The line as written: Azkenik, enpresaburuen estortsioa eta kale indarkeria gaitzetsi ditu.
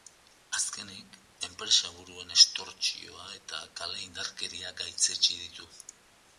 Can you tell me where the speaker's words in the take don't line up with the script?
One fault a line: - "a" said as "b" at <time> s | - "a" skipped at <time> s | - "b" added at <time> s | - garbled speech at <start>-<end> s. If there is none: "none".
none